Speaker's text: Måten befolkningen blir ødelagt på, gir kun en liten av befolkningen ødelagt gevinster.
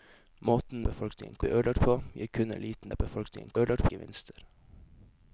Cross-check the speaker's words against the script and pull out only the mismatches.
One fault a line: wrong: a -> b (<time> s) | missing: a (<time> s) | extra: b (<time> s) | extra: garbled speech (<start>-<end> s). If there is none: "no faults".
no faults